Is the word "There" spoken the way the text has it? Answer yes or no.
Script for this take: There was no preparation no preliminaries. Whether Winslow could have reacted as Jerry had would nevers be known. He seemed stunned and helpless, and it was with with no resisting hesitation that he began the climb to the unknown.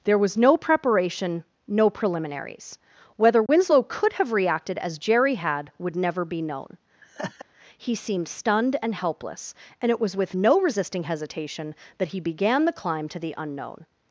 yes